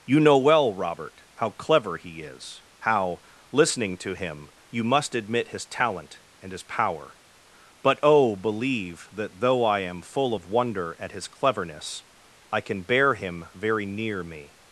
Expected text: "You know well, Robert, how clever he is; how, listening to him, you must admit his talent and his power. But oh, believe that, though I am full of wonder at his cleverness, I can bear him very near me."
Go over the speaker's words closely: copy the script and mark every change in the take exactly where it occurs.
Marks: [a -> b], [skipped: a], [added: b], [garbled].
"You know well, Robert, how clever he is; how, listening to him, you must admit his talent and his power. But oh, believe that, though I am full of wonder at his cleverness, I can bear him very near me."